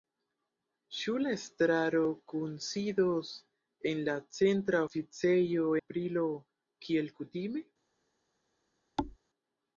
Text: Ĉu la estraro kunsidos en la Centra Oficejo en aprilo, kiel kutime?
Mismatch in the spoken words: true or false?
true